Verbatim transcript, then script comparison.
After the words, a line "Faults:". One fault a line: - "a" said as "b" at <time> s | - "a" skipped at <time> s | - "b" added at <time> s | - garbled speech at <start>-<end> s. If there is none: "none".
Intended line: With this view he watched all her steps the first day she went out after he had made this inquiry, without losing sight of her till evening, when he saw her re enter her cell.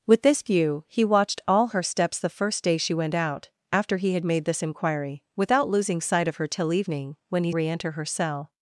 With this view he watched all her steps the first day she went out after he had made this inquiry, without losing sight of her till evening, when he re enter her cell.
Faults:
- "saw her" skipped at 7.5 s